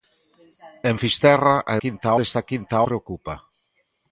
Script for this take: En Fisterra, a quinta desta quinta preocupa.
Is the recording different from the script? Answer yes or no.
no